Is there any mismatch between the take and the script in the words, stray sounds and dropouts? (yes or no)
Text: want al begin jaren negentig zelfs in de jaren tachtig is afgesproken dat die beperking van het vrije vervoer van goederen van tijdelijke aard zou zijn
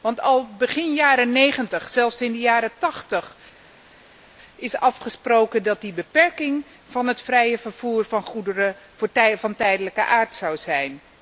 no